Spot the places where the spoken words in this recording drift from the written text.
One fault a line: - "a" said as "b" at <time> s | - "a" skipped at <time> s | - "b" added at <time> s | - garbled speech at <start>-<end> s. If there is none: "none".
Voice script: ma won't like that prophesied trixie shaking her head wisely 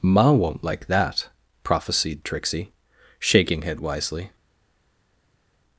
- "her" skipped at 3.6 s